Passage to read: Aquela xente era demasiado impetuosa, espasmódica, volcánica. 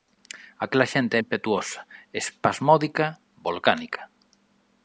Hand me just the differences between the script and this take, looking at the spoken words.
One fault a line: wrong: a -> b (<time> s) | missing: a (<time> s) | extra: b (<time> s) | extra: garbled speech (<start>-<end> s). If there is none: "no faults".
missing: era demasiado (1.1 s)